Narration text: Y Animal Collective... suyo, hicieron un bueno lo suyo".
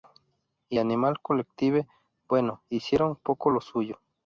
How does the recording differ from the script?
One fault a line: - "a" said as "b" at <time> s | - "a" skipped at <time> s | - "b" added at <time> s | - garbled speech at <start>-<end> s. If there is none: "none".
- "suyo" said as "bueno" at 2.3 s
- "bueno" said as "poco" at 3.2 s